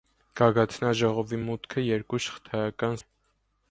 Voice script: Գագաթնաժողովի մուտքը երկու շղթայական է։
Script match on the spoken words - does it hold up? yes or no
yes